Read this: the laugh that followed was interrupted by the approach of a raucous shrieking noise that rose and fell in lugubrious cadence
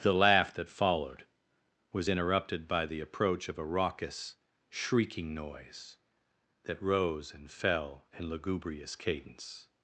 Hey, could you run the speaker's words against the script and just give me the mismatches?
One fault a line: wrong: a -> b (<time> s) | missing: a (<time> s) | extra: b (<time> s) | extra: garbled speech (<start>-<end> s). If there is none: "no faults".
no faults